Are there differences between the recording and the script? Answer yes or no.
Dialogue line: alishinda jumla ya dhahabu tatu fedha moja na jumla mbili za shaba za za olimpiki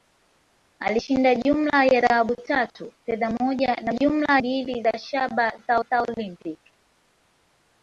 no